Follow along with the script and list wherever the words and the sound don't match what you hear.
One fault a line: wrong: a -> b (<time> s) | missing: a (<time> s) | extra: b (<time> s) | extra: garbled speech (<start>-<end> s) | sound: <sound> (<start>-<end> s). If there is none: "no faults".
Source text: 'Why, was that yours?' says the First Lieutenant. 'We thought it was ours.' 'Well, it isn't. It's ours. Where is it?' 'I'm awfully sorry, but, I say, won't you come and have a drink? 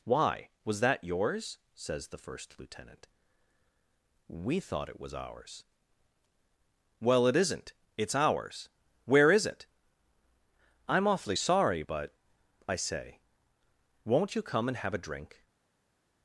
no faults